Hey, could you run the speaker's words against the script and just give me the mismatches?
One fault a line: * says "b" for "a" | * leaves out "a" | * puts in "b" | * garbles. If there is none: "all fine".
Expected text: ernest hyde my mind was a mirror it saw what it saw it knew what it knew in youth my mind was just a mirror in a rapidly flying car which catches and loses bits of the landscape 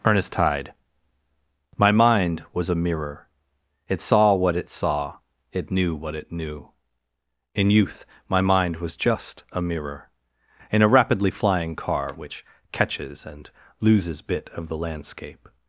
* says "bit" for "bits"